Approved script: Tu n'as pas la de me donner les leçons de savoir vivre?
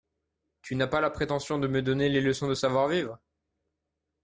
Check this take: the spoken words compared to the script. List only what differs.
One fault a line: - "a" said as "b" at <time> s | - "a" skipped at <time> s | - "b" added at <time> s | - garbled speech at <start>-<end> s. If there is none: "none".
- "prétention" added at 1.1 s